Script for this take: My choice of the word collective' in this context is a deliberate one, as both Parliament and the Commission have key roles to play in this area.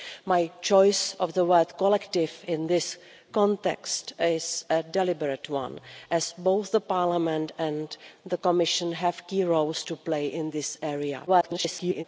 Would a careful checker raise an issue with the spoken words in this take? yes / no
yes